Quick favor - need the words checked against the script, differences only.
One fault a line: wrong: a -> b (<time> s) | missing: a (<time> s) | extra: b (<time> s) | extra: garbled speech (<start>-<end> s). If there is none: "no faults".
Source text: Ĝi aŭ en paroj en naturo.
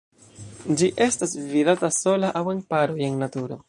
extra: estas vidata sola (1.1 s)